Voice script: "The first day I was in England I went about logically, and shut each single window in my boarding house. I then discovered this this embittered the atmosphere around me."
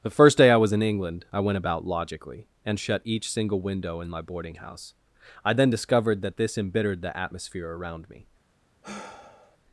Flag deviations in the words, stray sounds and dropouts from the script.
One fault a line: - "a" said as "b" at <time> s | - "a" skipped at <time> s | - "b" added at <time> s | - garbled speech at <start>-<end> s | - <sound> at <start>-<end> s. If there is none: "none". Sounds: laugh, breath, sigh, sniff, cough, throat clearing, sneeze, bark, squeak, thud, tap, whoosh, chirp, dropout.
- "this" said as "that" at 6.2 s
- sigh at 8.8-9.6 s